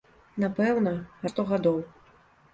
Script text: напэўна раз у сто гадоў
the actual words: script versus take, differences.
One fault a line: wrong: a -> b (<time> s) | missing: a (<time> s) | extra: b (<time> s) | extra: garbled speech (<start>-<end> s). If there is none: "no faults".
missing: раз (0.9 s)